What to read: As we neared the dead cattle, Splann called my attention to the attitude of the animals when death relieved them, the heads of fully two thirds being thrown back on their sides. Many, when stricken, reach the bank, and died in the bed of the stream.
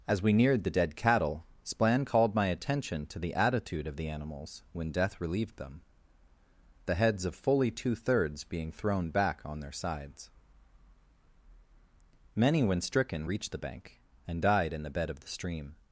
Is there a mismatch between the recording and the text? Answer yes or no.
no